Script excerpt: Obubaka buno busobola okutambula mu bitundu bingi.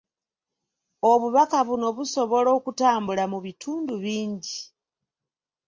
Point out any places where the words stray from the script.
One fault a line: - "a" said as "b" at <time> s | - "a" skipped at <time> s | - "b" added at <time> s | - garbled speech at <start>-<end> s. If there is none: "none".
none